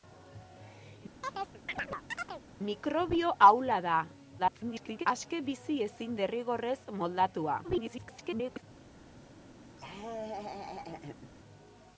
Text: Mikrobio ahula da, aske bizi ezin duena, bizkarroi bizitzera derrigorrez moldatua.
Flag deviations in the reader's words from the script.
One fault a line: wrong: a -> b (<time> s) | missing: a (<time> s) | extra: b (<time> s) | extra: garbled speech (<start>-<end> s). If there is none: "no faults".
extra: garbled speech (4.4-5.1 s)
missing: duena bizkarroi bizitzera (6.2 s)
extra: garbled speech (7.6-8.6 s)